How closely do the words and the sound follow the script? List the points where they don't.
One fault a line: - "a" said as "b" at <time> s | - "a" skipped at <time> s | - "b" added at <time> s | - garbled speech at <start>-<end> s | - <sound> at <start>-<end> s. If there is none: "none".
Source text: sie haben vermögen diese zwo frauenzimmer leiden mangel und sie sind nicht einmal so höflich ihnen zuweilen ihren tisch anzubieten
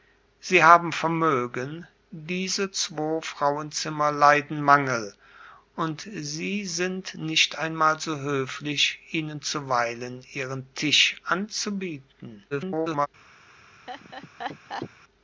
- garbled speech at 12.5-13.1 s
- laugh at 13.9-14.9 s